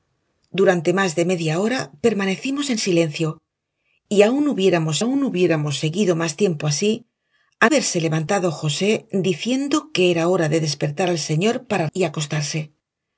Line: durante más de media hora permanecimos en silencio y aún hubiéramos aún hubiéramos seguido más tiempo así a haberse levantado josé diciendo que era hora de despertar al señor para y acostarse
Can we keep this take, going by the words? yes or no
yes